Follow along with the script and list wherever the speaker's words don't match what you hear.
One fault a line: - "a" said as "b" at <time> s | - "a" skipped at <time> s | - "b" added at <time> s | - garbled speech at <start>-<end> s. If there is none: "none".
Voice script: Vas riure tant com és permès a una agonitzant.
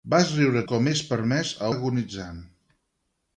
- "tant" skipped at 0.6 s
- "una" skipped at 1.7 s